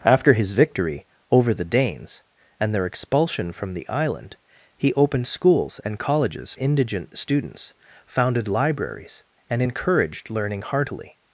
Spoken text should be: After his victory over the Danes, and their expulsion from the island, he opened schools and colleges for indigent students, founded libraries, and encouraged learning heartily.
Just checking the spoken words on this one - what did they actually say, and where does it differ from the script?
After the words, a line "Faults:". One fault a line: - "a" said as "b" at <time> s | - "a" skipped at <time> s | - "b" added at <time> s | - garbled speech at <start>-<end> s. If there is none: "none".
After his victory over the Danes, and their expulsion from the island, he opened schools and colleges indigent students, founded libraries, and encouraged learning heartily.
Faults:
- "for" skipped at 6.5 s